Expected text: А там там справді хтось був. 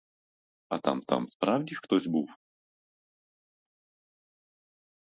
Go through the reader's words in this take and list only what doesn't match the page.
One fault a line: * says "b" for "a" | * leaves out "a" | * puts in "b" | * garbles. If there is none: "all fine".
all fine